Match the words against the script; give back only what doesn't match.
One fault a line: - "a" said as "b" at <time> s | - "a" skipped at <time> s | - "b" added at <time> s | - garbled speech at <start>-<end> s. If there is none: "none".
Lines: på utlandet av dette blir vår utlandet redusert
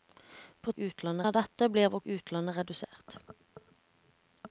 none